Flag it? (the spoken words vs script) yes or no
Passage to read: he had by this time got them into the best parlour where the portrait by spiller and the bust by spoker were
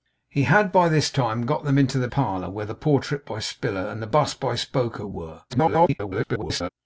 yes